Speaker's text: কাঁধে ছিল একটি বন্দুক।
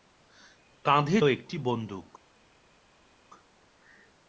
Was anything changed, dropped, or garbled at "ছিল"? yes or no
yes